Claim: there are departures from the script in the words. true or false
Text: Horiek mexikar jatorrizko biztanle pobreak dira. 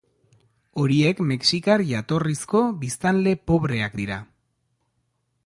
false